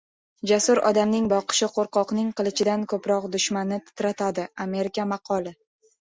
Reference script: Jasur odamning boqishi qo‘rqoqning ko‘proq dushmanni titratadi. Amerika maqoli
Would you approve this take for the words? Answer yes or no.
no